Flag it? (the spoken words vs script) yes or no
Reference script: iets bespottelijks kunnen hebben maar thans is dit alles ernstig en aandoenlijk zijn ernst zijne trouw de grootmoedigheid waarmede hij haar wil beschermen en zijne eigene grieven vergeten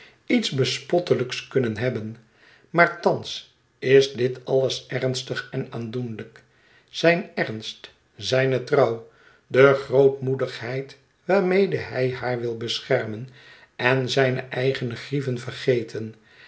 no